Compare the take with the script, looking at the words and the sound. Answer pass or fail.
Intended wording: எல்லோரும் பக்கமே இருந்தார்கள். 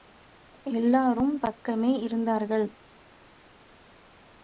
pass